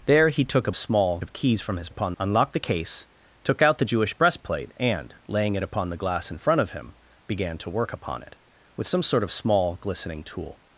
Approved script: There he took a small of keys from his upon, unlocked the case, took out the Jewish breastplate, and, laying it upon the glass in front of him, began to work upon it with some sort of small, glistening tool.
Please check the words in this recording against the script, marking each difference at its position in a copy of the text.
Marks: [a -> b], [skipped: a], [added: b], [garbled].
There he took a small of keys from his upon, unlocked the case, took out the Jewish breastplate, and, laying it upon the glass in front of him, began to work upon it with some sort of small, glistening tool.